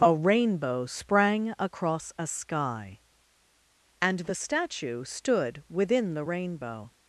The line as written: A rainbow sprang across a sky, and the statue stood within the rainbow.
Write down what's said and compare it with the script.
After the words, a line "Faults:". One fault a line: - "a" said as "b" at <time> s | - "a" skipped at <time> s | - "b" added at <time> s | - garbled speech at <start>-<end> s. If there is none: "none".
A rainbow sprang across a sky, and the statue stood within the rainbow.
Faults:
none